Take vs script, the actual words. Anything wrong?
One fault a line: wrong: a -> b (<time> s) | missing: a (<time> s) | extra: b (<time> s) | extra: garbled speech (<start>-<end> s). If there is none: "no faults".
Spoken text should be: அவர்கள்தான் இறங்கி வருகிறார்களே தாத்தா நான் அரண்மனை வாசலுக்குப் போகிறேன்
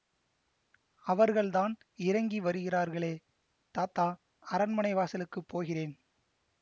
missing: நான் (4.1 s)